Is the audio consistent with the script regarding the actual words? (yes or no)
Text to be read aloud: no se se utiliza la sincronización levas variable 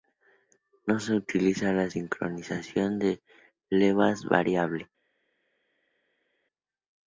no